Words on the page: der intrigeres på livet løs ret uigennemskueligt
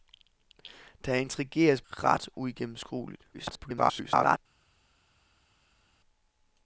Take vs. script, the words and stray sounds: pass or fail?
fail